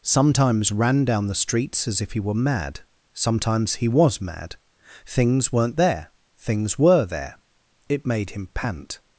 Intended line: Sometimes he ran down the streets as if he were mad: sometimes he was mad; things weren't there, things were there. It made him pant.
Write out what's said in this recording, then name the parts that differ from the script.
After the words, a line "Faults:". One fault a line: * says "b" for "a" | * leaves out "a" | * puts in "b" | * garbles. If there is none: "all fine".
Sometimes ran down the streets as if he were mad: sometimes he was mad; things weren't there, things were there. It made him pant.
Faults:
* leaves out "he"